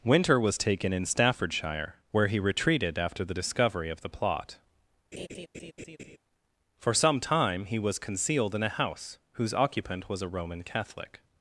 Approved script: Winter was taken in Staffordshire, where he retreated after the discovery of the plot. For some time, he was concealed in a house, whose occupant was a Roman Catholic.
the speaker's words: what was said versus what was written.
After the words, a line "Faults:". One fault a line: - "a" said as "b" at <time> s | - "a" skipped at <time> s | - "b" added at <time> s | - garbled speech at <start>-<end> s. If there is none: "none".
Winter was taken in Staffordshire, where he retreated after the discovery of the plot. For some time, he was concealed in a house, whose occupant was a Roman Catholic.
Faults:
none